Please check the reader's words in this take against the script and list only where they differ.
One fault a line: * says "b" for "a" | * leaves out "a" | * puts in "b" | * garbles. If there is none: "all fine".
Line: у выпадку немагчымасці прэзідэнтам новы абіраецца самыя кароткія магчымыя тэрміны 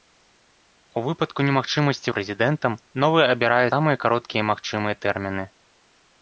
all fine